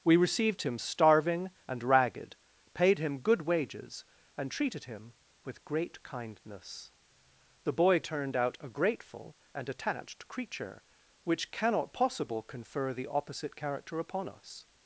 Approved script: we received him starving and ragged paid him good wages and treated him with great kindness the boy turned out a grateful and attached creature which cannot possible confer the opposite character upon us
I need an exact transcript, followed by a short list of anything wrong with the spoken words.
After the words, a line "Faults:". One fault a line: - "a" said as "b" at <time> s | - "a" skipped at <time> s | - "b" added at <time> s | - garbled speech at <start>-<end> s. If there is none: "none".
we received him starving and ragged paid him good wages and treated him with great kindness the boy turned out a grateful and attached creature which cannot possible confer the opposite character upon us
Faults:
none